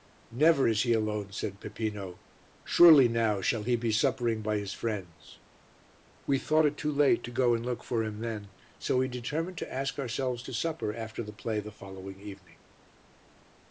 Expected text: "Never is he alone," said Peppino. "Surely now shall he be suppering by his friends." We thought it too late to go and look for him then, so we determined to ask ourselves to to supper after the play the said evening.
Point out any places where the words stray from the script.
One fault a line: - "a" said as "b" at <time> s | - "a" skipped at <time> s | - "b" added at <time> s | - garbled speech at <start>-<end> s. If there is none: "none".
- "to" skipped at 10.5 s
- "said" said as "following" at 11.7 s